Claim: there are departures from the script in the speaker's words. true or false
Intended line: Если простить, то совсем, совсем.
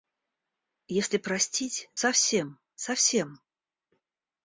true